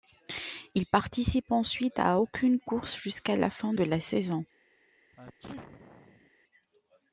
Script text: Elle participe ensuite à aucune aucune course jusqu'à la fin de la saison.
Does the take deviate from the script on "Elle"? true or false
true